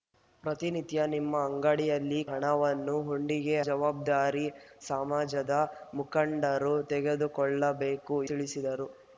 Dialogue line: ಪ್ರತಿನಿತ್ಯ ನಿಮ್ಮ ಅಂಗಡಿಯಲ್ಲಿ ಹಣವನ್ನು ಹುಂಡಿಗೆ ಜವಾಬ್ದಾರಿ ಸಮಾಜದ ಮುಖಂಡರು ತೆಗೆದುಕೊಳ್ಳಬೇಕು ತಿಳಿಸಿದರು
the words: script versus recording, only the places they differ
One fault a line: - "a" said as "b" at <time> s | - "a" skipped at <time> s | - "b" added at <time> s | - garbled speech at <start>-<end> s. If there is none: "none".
none